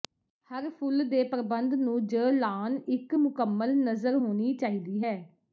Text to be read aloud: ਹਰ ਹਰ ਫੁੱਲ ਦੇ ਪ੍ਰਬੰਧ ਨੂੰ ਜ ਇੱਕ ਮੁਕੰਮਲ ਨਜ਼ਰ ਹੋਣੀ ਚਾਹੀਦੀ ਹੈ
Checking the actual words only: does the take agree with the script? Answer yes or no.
no